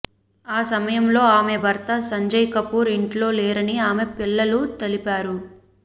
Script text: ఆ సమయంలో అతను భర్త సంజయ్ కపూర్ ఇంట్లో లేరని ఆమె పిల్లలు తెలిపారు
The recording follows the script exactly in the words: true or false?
false